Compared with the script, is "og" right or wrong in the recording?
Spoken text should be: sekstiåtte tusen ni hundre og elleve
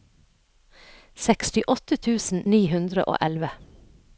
right